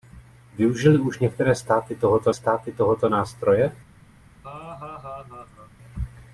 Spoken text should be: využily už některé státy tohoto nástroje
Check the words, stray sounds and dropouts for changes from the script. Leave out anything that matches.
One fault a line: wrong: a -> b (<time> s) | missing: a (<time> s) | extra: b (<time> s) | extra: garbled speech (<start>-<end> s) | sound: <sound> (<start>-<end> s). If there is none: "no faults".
extra: státy tohoto (2.3 s)
sound: laugh (4.4-5.7 s)